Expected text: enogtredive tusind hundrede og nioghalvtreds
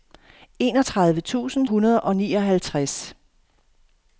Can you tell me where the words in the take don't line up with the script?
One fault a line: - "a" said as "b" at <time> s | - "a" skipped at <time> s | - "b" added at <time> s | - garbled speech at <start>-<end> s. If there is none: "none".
none